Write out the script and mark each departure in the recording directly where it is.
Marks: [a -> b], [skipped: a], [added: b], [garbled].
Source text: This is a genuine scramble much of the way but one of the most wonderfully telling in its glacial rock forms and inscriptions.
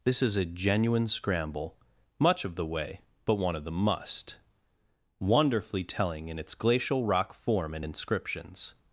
This is a genuine scramble much of the way but one of the [most -> must] wonderfully telling in its glacial rock [forms -> form] and inscriptions.